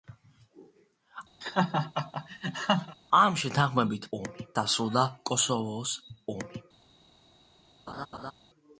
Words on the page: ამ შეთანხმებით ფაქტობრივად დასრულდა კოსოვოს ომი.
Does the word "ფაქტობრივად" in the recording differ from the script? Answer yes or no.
yes